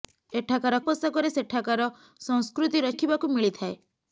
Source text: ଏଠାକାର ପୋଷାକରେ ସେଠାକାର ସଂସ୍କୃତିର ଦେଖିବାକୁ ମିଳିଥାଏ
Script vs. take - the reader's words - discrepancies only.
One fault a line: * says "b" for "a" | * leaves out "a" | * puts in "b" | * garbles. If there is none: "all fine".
all fine